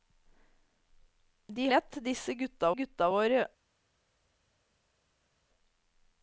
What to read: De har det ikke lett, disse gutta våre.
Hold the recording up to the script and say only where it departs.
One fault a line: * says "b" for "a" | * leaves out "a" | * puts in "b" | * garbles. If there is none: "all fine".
* leaves out "har det ikke"
* puts in "gutta"